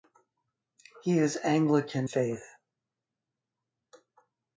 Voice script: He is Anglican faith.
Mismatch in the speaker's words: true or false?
false